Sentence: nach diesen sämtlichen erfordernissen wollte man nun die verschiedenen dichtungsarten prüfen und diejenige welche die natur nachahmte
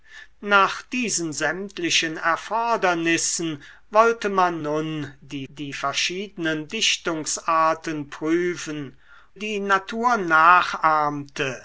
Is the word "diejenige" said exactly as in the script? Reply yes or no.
no